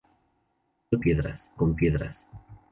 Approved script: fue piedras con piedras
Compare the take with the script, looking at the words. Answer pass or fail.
pass